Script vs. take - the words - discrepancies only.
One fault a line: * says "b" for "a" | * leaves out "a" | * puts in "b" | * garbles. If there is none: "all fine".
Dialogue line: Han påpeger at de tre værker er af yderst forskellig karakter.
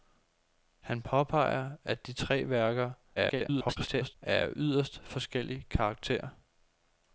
* garbles